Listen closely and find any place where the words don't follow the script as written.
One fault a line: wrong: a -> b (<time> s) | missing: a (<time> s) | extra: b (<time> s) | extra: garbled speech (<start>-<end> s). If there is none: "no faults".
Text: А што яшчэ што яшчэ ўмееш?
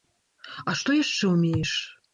missing: што яшчэ (1.4 s)